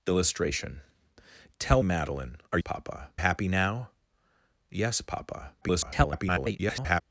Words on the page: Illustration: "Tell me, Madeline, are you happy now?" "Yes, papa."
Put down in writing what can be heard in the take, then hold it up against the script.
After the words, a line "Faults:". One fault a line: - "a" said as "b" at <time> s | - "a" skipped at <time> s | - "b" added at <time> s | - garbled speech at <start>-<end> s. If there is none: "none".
Illustration: "Tell Madeline, are papa happy now?" "Yes, papa." [garbled]
Faults:
- "me" skipped at 1.8 s
- "you" said as "papa" at 2.6 s
- garbled speech at 5.6-7.0 s